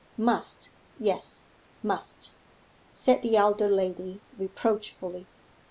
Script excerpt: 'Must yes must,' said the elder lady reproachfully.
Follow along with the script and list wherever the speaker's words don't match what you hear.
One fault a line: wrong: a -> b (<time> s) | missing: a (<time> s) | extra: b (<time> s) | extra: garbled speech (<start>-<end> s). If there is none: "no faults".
no faults